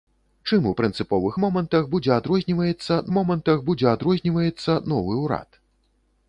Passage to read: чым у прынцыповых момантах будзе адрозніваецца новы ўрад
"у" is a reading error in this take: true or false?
false